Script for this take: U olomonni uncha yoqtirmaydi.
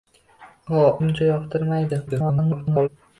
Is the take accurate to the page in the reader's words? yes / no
no